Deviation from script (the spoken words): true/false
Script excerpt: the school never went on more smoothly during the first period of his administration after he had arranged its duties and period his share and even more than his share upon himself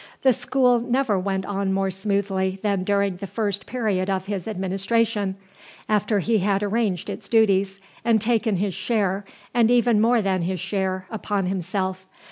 true